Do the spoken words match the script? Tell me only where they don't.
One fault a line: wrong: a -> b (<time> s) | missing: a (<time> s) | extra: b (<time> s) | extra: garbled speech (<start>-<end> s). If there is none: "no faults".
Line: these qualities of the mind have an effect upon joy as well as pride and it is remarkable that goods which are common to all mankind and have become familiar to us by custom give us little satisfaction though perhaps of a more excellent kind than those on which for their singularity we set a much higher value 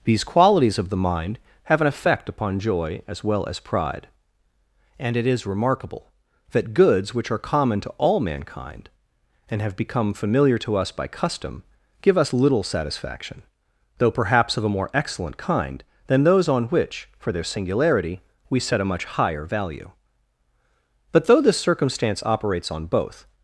extra: but though this circumstance operates on both (21.1 s)